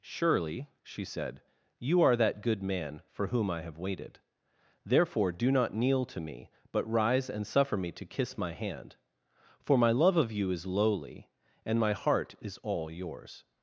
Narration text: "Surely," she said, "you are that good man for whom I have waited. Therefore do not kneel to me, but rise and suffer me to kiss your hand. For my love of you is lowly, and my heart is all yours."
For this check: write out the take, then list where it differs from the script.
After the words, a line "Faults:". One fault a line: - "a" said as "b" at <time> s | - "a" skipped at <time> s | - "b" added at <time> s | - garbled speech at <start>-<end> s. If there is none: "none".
"Surely," she said, "you are that good man for whom I have waited. Therefore do not kneel to me, but rise and suffer me to kiss my hand. For my love of you is lowly, and my heart is all yours."
Faults:
- "your" said as "my" at 8.4 s